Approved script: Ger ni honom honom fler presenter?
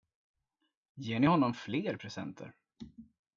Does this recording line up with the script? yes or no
no